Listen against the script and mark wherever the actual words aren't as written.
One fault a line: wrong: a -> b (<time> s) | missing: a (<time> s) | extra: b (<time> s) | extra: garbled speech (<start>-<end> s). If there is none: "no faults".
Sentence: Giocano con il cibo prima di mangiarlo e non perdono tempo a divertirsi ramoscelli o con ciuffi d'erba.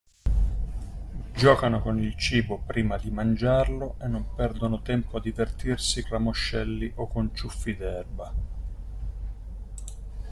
no faults